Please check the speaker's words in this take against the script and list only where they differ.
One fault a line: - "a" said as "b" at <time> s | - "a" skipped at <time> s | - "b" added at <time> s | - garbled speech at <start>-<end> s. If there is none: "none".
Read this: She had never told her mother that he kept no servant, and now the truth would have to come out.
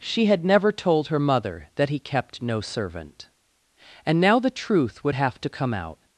none